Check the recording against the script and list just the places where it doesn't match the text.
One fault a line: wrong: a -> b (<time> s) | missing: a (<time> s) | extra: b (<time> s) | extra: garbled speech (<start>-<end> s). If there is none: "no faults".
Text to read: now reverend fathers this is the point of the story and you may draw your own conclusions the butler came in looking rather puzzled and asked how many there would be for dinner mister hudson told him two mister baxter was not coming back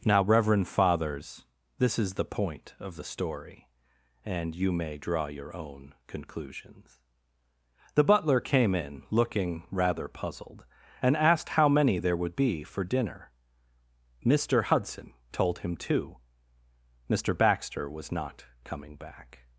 no faults